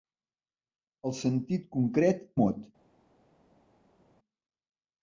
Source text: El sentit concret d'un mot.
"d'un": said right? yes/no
no